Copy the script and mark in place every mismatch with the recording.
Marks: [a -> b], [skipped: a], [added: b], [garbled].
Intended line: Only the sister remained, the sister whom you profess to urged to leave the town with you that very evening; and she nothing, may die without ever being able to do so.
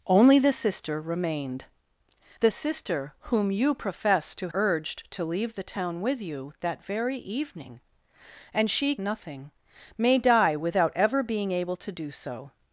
Only the sister remained, the sister whom you profess to urged to leave the town with you that very evening; and she nothing, may die without ever being able to do so.